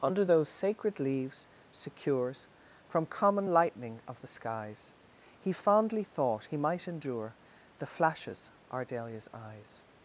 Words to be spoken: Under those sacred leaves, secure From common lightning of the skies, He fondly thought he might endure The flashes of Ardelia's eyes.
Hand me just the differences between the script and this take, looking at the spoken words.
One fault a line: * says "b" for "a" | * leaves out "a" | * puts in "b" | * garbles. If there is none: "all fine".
* says "secures" for "secure"
* leaves out "of"